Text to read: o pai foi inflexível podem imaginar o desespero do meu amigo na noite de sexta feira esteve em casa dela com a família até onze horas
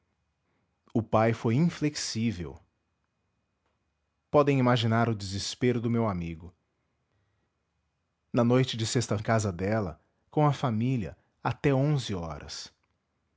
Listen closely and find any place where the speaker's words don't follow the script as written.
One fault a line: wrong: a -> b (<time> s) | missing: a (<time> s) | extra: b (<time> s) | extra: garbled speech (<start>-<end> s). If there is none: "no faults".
missing: feira esteve (9.2 s)